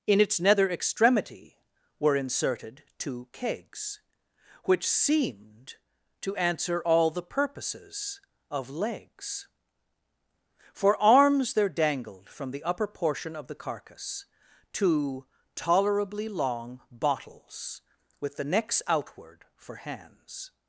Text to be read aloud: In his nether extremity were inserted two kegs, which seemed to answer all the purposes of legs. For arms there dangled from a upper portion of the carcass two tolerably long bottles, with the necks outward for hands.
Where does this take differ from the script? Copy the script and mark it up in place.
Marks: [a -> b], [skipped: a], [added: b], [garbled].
In [his -> its] nether extremity were inserted two kegs, which seemed to answer all the purposes of legs. For arms there dangled from [a -> the] upper portion of the carcass two tolerably long bottles, with the necks outward for hands.